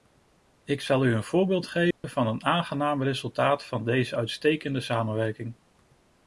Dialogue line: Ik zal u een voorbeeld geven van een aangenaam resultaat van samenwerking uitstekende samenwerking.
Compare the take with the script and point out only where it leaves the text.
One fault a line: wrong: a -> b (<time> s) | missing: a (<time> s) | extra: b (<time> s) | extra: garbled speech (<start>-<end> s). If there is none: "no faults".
wrong: samenwerking -> deze (3.9 s)